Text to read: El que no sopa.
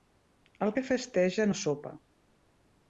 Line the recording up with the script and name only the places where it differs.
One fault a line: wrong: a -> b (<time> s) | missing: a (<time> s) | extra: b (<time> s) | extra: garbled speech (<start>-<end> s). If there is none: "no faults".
extra: festeja (0.9 s)